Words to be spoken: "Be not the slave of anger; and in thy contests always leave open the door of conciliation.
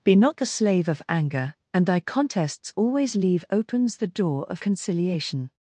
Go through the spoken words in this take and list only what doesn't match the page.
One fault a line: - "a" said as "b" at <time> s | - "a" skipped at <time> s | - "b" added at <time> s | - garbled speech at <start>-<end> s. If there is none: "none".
- "in" skipped at 1.9 s
- "open" said as "opens" at 3.5 s